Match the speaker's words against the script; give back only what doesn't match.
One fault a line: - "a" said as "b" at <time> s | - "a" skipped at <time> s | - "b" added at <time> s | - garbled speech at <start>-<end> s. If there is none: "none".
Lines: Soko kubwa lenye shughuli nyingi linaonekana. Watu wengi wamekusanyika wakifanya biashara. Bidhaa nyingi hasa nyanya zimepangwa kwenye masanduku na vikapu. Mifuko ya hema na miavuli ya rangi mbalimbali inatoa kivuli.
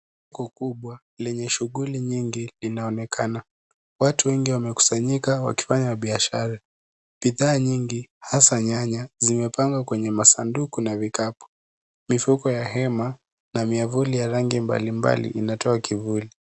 none